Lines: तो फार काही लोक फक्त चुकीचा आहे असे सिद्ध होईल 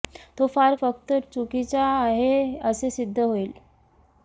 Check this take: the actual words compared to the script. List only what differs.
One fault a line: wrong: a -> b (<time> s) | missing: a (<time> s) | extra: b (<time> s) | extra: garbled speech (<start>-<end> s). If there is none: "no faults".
missing: काही लोक (0.8 s)